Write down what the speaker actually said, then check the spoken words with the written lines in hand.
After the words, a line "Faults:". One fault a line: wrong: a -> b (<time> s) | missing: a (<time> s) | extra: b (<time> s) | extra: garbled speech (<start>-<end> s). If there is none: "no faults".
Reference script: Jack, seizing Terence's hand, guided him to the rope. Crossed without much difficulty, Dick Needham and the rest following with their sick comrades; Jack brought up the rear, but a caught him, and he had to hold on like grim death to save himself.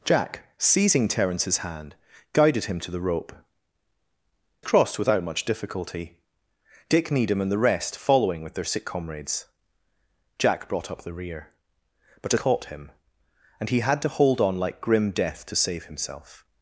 Jack, seizing Terence's hand, guided him to the rope. Crossed without much difficulty, Dick Needham and the rest following with their sick comrades; Jack brought up the rear, but a caught him, and he had to hold on like grim death to save himself.
Faults:
no faults